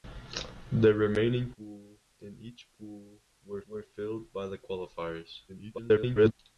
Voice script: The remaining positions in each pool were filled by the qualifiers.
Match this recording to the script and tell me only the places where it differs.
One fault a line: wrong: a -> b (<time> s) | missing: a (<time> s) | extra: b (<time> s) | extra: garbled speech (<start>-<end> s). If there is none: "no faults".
wrong: positions -> pool (1.5 s)
extra: were (3.7 s)
extra: garbled speech (5.5-6.3 s)